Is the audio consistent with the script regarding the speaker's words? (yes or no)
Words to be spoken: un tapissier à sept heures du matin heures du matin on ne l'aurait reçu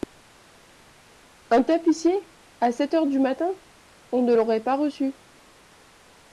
no